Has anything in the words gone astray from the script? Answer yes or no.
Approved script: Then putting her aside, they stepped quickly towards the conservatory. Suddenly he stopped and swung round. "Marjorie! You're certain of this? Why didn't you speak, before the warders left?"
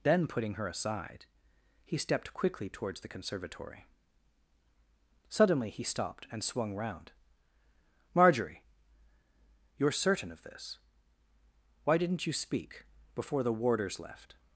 yes